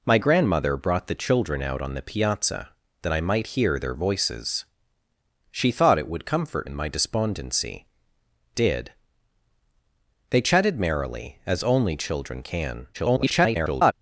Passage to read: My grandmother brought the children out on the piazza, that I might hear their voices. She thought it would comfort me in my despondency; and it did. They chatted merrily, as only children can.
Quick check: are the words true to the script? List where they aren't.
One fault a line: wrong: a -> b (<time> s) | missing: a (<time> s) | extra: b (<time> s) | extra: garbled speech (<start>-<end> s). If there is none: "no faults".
missing: me (6.7 s)
missing: and it (7.9 s)
extra: garbled speech (12.9-13.9 s)